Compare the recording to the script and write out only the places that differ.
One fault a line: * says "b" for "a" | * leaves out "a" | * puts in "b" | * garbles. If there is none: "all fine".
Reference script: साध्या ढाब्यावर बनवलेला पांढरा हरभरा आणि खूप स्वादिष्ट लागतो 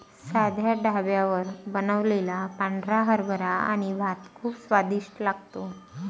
* puts in "भात"